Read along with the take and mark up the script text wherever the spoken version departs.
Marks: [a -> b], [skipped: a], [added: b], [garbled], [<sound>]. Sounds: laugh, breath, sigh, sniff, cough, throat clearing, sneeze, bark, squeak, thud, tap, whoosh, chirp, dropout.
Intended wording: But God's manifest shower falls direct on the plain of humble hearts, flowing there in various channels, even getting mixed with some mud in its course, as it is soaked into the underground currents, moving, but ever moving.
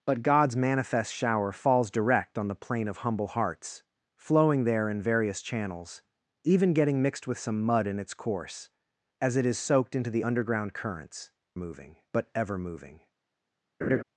But God's manifest shower falls direct on the plain of humble hearts, flowing there in various channels, even getting mixed with some mud in its course, as it is soaked into the underground currents, moving, but ever moving. [laugh]